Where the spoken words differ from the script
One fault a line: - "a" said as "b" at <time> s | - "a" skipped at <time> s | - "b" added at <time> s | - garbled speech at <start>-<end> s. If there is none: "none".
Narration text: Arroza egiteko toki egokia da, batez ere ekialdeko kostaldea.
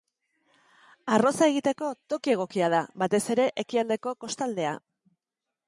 none